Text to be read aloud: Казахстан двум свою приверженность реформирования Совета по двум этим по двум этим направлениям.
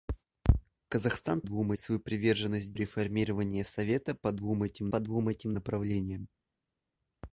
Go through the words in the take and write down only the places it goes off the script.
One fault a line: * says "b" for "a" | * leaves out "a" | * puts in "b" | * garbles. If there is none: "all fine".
all fine